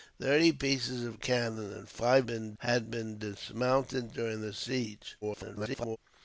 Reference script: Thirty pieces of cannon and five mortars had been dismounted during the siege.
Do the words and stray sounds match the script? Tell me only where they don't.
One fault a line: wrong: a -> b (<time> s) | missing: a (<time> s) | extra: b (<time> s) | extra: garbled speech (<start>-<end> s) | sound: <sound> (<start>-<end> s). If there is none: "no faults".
wrong: mortars -> been (2.3 s)
extra: garbled speech (5.2-6.0 s)